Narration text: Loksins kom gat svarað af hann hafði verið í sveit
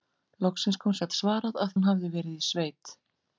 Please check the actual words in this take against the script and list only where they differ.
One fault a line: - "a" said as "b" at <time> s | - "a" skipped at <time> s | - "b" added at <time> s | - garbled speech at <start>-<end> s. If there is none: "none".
none